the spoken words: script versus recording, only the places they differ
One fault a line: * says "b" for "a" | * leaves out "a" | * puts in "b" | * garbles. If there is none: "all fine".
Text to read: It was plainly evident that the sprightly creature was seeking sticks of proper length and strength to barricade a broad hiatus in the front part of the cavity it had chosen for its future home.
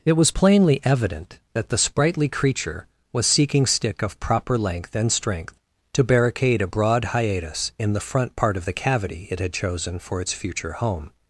* says "stick" for "sticks"